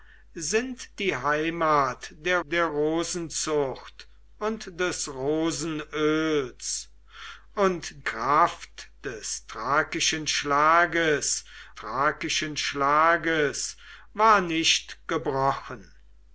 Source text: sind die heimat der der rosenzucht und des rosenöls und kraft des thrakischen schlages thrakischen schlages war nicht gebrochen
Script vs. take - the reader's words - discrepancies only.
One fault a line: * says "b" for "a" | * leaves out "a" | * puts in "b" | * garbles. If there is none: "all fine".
all fine